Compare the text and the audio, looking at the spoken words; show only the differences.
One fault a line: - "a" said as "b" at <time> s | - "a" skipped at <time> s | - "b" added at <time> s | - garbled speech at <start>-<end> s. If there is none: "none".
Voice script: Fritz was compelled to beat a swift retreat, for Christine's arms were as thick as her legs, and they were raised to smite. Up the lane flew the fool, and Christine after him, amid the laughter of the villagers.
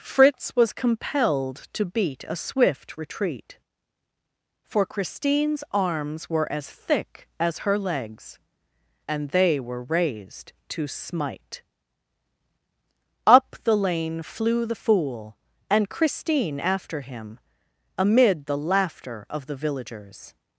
none